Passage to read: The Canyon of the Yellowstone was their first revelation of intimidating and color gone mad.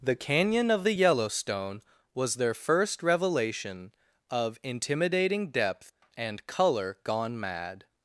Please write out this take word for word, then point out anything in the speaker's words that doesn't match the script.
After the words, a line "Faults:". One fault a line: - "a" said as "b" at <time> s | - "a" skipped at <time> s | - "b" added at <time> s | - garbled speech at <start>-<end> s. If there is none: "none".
The Canyon of the Yellowstone was their first revelation of intimidating depth and color gone mad.
Faults:
- "depth" added at 5.5 s